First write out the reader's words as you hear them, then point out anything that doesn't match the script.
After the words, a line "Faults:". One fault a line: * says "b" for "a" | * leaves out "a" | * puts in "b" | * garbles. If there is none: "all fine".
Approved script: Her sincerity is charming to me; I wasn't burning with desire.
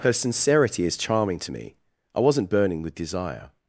Her sincerity is charming to me; I wasn't burning with desire.
Faults:
all fine